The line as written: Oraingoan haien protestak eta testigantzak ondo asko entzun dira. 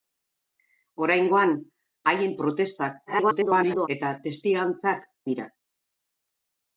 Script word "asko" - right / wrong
wrong